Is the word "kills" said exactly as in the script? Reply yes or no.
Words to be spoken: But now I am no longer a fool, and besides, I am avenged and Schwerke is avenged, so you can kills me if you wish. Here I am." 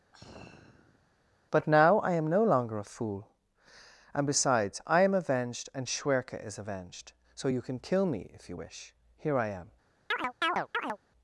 no